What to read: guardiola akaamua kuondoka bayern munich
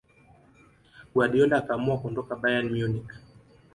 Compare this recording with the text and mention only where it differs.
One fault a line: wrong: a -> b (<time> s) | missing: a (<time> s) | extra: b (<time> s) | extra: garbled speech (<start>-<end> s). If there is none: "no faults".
no faults